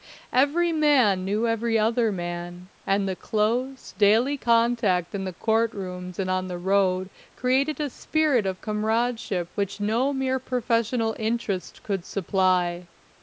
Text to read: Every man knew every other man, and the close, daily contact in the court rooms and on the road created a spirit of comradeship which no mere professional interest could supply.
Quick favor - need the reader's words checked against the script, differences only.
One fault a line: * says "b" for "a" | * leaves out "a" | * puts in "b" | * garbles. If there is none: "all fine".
all fine